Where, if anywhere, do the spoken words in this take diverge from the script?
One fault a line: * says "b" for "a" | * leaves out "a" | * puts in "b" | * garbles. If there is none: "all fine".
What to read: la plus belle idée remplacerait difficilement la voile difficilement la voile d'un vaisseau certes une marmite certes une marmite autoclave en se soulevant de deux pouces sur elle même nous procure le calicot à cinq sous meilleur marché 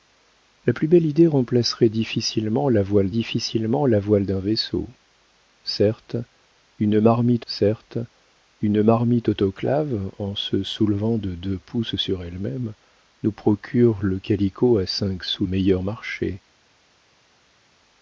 all fine